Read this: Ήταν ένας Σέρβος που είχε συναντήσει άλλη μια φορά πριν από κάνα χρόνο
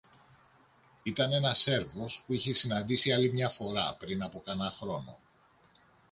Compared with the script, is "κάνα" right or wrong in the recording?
right